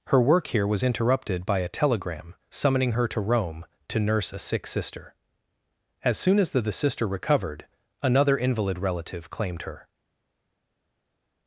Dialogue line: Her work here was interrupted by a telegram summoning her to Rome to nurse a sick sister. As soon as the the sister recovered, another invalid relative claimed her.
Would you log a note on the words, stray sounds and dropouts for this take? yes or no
no